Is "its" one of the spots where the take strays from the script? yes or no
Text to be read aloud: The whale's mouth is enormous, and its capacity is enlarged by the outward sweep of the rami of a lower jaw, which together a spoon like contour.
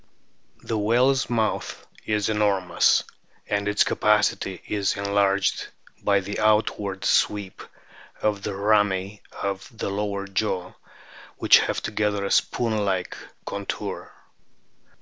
no